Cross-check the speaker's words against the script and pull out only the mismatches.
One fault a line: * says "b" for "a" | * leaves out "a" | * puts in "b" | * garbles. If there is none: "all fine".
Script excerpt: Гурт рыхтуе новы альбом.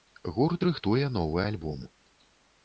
all fine